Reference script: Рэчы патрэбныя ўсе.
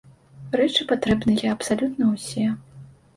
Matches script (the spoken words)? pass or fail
fail